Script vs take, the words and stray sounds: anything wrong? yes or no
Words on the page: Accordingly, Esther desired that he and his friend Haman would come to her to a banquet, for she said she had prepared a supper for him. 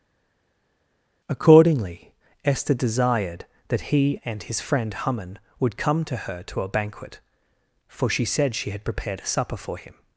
no